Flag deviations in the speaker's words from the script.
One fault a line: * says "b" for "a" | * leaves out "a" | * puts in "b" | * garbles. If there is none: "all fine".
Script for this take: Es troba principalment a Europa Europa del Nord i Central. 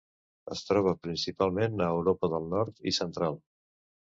* leaves out "Europa"